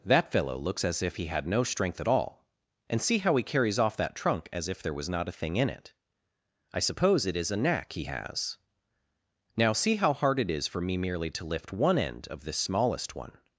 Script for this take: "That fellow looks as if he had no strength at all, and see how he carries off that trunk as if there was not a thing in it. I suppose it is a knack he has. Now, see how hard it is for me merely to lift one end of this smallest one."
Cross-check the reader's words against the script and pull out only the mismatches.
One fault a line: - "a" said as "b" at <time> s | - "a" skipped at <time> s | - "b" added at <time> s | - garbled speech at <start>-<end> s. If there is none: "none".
none